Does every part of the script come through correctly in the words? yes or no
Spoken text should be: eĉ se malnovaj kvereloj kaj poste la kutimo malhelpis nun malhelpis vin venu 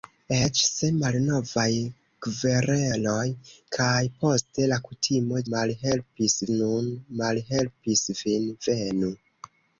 yes